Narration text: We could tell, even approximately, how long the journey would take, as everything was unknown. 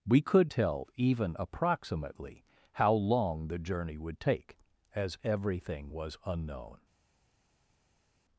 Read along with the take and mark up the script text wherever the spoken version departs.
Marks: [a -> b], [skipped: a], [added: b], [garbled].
We could tell, even approximately, how long the journey would take, as everything was unknown.